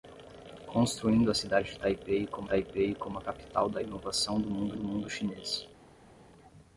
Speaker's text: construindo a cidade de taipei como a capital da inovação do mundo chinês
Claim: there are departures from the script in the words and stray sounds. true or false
true